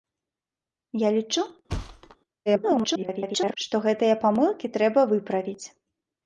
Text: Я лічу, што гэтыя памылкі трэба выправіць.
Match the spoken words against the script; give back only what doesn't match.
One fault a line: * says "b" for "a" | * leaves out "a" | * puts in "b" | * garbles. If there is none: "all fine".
* garbles